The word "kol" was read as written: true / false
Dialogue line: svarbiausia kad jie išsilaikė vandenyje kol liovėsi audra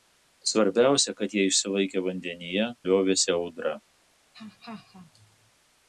false